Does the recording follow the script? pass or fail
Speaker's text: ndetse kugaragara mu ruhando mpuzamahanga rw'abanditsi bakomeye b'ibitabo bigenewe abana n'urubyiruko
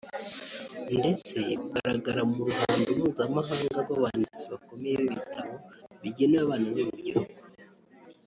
pass